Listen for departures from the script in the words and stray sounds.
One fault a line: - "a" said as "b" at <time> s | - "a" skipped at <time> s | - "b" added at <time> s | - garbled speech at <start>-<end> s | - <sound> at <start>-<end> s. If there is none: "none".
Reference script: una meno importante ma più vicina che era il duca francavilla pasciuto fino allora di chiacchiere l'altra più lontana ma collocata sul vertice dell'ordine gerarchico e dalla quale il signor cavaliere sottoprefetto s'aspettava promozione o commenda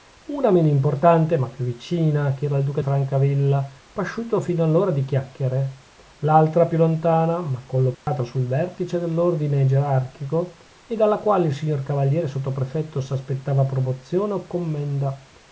- dropout at 7.9-8.1 s